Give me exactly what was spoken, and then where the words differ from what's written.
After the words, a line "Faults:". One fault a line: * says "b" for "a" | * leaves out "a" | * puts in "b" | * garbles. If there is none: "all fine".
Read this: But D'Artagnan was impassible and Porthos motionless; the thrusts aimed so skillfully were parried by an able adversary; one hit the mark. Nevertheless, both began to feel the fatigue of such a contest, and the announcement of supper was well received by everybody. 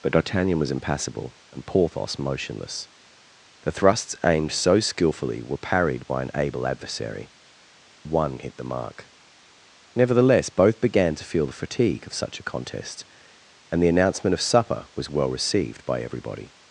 But D'Artagnan was impassible and Porthos motionless; the thrusts aimed so skillfully were parried by an able adversary; one hit the mark. Nevertheless, both began to feel the fatigue of such a contest, and the announcement of supper was well received by everybody.
Faults:
all fine